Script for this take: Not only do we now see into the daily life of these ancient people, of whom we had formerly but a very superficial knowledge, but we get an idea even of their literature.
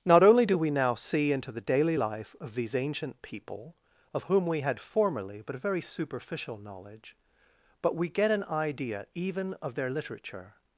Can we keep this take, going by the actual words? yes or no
yes